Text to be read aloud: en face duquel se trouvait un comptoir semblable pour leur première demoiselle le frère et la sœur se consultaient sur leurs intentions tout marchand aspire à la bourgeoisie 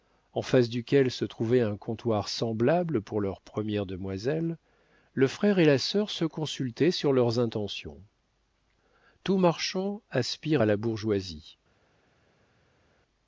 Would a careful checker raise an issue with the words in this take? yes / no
no